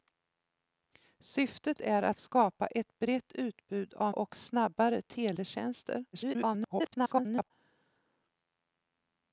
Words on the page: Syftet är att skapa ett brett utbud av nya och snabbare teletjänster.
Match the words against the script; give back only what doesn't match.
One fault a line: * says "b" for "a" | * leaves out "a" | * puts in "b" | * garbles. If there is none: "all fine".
* leaves out "nya"
* garbles